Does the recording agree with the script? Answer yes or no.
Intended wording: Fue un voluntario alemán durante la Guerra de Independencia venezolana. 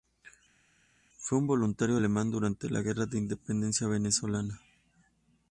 yes